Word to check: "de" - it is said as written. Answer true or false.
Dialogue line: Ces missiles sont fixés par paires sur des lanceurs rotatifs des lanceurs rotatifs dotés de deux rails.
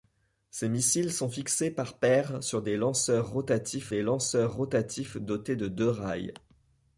true